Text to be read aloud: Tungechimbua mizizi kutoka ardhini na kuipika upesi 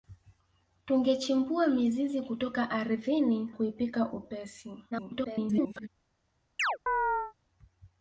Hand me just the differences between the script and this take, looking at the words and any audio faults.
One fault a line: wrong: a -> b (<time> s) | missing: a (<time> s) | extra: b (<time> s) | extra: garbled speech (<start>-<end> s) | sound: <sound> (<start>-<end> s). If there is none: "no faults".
missing: na (3.5 s)
extra: garbled speech (4.9-5.9 s)
sound: chirp (6.6-7.3 s)